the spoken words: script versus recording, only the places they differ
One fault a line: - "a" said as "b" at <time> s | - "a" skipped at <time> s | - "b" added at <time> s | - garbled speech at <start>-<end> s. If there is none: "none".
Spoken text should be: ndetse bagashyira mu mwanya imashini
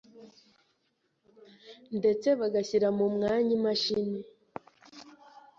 none